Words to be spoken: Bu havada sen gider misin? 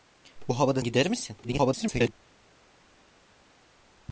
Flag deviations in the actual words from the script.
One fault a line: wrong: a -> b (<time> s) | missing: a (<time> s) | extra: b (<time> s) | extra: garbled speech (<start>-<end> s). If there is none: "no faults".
missing: sen (0.8 s)
extra: garbled speech (1.4-2.1 s)